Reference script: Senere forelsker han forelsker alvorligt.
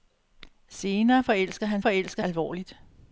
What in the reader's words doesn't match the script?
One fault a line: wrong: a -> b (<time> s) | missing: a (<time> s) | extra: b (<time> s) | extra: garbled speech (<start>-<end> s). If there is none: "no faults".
no faults